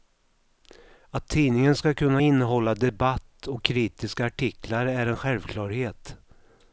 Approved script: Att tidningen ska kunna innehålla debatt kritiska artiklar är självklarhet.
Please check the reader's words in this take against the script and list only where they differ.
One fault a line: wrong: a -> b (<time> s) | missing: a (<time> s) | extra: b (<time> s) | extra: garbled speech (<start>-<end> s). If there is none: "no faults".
extra: och (3.5 s)
extra: en (5.1 s)